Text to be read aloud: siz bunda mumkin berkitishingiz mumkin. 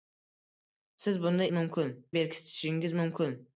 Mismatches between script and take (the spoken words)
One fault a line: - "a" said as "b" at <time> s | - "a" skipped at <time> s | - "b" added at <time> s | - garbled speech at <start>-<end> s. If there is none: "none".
none